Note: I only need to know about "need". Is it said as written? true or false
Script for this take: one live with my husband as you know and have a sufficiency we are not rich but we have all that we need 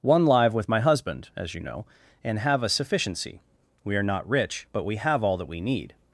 true